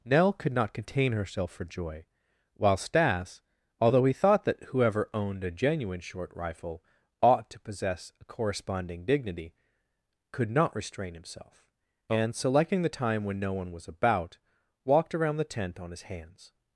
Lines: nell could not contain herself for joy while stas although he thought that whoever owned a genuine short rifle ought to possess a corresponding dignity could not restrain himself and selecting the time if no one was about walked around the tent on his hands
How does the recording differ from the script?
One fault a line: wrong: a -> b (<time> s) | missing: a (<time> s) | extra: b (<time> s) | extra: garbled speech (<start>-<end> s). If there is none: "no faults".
wrong: if -> when (13.2 s)